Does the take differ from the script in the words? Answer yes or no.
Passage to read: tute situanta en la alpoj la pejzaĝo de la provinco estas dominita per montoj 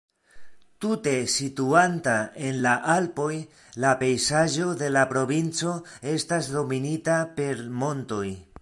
no